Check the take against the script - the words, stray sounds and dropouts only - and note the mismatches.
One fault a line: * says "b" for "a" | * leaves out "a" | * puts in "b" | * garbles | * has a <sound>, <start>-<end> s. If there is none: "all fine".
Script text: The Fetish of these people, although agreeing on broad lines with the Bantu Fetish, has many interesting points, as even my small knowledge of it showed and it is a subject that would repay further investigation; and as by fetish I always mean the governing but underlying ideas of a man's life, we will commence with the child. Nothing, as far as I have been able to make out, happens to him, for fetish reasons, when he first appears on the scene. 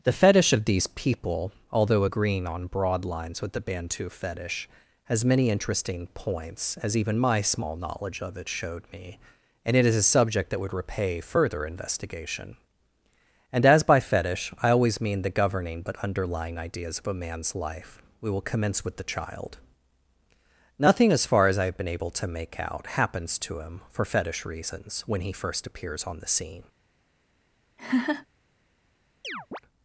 * puts in "me"
* has a laugh, 27.8-28.3 s
* has a chirp, 29.2-29.6 s